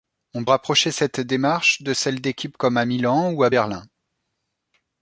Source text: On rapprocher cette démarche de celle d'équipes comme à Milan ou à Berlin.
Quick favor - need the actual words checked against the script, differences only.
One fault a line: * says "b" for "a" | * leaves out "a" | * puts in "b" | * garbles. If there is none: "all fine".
all fine